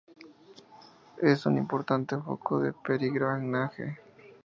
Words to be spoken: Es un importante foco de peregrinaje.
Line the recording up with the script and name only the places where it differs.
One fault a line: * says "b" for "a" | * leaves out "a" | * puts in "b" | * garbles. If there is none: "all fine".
all fine